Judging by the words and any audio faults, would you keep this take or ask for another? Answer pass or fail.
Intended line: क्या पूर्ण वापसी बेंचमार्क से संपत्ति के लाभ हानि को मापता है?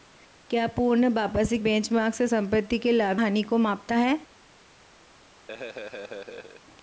fail